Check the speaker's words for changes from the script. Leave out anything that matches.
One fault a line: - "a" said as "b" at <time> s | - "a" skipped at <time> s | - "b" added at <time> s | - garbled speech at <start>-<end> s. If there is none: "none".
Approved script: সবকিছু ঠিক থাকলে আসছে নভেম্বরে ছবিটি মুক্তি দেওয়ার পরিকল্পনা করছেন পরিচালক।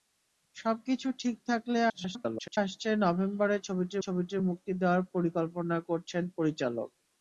- garbled speech at 1.9-2.6 s
- "ছবিটি" added at 4.0 s